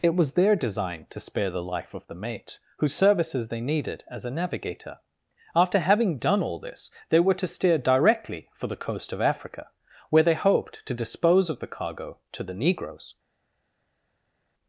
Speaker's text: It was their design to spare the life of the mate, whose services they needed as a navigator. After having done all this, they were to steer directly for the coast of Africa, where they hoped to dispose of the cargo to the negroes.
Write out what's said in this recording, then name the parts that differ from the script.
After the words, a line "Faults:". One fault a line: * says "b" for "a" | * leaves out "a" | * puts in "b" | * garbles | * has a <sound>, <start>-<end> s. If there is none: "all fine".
It was their design to spare the life of the mate, whose services they needed as a navigator. After having done all this, they were to steer directly for the coast of Africa, where they hoped to dispose of the cargo to the negroes.
Faults:
all fine